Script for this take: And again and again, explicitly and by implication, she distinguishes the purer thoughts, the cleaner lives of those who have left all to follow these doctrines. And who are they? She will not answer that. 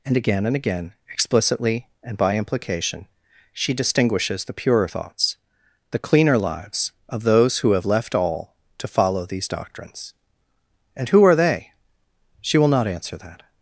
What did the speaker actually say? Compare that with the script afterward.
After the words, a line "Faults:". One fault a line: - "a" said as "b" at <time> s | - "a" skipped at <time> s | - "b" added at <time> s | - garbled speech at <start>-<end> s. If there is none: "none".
And again and again, explicitly and by implication, she distinguishes the purer thoughts, the cleaner lives of those who have left all to follow these doctrines. And who are they? She will not answer that.
Faults:
none